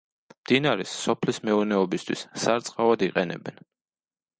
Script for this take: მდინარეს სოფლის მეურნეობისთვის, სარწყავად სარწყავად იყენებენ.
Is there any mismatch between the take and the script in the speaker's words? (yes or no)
yes